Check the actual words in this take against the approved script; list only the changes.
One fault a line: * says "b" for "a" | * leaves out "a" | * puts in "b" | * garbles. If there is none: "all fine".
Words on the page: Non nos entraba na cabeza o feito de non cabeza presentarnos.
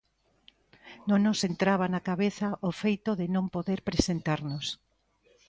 * says "poder" for "cabeza"